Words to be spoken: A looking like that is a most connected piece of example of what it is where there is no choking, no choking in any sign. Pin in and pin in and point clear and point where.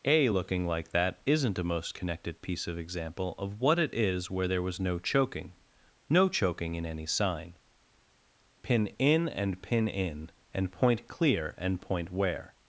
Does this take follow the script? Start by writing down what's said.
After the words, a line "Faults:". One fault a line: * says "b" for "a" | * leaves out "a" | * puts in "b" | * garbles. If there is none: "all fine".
A looking like that isn't a most connected piece of example of what it is where there was no choking, no choking in any sign. Pin in and pin in and point clear and point where.
Faults:
* says "isn't" for "is"
* says "was" for "is"